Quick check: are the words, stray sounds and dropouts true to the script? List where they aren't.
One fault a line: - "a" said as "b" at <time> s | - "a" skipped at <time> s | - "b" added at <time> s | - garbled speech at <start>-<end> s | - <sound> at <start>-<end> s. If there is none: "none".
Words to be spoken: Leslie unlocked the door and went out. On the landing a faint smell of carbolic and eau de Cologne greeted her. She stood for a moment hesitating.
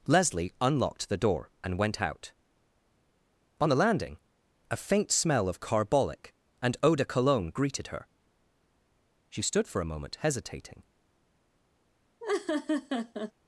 - laugh at 12.2-13.3 s